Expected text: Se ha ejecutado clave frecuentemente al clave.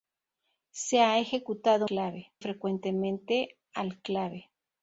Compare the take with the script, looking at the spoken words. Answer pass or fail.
pass